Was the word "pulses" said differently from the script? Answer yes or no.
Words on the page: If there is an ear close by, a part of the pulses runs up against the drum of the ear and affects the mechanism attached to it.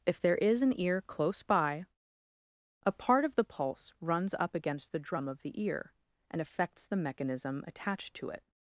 yes